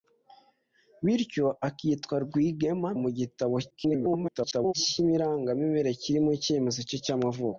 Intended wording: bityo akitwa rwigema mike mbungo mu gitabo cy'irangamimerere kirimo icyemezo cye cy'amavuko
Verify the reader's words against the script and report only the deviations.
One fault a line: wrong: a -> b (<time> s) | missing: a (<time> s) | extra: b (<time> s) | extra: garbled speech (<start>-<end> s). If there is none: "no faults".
missing: mike mbungo (2.9 s)
extra: garbled speech (3.7-4.7 s)